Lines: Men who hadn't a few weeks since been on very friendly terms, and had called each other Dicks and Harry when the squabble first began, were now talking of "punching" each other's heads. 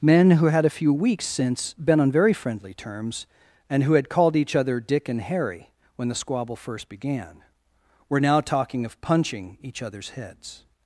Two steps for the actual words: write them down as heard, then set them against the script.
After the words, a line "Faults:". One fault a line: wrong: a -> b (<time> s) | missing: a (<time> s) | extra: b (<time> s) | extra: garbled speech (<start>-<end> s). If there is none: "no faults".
Men who had a few weeks since been on very friendly terms, and who had called each other Dick and Harry when the squabble first began, were now talking of "punching" each other's heads.
Faults:
wrong: hadn't -> had (0.5 s)
extra: who (3.8 s)
wrong: Dicks -> Dick (4.8 s)